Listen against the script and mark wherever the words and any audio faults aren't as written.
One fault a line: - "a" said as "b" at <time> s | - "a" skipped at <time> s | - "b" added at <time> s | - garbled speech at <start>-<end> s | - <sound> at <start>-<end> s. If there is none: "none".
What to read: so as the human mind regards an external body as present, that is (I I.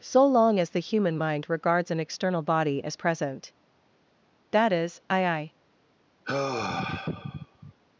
- "long" added at 0.2 s
- sigh at 6.2-7.7 s